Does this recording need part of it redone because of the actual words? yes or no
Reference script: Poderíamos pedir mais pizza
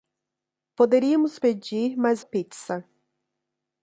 no